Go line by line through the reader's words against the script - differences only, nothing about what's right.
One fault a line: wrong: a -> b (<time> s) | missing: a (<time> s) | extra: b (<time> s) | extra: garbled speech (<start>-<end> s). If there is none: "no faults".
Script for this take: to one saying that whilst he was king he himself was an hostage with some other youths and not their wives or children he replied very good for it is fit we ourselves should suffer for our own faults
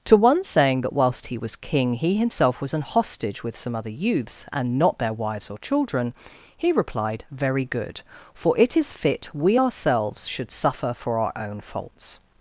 no faults